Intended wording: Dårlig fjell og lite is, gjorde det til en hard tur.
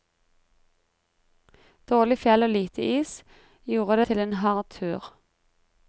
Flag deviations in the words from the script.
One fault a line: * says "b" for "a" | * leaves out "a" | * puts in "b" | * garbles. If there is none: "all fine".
* leaves out "det"